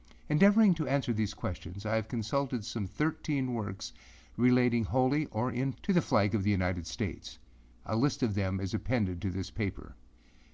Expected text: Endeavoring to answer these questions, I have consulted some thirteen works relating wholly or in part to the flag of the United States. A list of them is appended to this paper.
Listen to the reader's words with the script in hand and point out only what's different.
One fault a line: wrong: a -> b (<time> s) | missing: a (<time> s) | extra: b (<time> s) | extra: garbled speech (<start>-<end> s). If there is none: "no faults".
missing: part (5.7 s)